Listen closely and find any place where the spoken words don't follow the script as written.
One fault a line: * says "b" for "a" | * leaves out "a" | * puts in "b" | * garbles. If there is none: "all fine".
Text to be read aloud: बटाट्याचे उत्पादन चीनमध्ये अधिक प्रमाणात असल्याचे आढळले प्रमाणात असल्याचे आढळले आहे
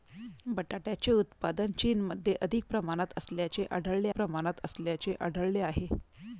all fine